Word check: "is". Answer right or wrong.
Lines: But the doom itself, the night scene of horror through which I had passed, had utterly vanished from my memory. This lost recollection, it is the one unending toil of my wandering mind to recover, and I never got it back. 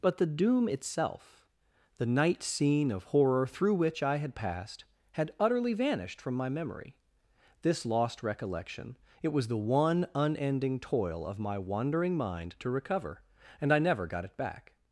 wrong